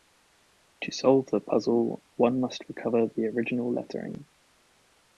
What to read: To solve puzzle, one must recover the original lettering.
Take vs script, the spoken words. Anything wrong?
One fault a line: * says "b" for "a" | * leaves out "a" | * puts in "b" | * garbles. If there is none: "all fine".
* puts in "the"